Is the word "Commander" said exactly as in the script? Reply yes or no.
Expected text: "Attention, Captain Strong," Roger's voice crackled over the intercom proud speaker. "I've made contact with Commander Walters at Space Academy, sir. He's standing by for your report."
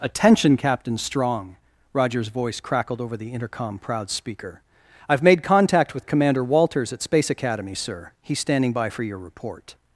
yes